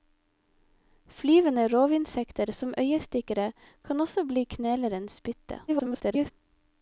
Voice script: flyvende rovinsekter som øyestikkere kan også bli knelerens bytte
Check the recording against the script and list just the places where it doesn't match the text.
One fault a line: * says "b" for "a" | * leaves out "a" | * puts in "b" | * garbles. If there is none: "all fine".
* garbles